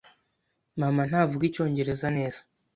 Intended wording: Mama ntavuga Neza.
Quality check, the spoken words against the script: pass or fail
fail